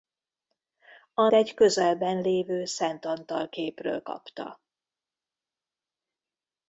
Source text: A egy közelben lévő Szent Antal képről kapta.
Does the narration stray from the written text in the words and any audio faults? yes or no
no